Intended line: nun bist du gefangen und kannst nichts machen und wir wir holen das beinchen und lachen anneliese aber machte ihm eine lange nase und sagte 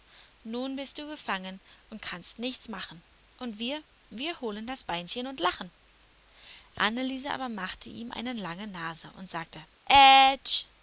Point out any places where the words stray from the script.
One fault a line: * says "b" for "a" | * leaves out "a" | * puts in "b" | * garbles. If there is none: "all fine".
all fine